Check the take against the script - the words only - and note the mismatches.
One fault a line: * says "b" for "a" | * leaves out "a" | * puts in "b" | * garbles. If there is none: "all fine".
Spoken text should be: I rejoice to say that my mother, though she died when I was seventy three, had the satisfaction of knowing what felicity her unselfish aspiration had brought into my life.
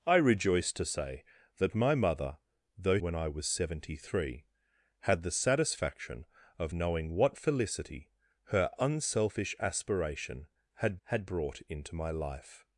* leaves out "she died"
* puts in "had"